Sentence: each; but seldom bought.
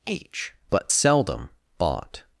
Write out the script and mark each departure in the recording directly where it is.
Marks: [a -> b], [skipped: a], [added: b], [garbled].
[each; -> h] but seldom bought.